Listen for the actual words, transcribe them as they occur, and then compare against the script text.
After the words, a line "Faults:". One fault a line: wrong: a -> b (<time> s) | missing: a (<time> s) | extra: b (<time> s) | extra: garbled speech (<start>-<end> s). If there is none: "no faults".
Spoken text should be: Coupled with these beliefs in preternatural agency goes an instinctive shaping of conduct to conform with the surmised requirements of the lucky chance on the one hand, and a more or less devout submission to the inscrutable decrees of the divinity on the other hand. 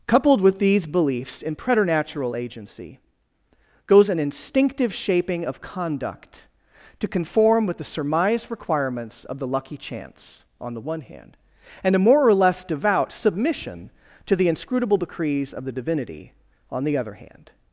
Coupled with these beliefs in preternatural agency goes an instinctive shaping of conduct to conform with the surmised requirements of the lucky chance on the one hand, and a more or less devout submission to the inscrutable decrees of the divinity on the other hand.
Faults:
no faults